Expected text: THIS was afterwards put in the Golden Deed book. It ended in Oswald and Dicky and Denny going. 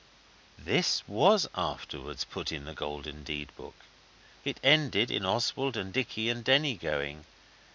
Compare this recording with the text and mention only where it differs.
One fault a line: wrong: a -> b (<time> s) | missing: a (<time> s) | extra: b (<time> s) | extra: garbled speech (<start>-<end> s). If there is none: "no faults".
no faults